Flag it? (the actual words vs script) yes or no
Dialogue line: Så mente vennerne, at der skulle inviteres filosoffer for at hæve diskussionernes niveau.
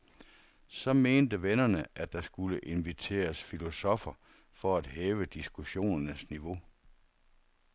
no